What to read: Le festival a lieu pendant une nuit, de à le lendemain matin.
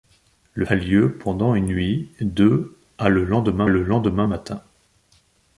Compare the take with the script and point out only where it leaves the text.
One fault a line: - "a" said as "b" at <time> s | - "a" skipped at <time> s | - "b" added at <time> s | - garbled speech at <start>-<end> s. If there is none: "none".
- "festival" skipped at 0.7 s
- "le lendemain" added at 3.7 s